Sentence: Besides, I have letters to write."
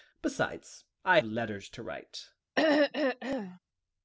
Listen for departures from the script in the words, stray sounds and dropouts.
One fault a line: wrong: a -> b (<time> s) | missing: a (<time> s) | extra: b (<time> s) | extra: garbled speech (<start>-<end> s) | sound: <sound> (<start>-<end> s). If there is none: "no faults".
missing: have (1.2 s)
sound: throat clearing (2.6-3.6 s)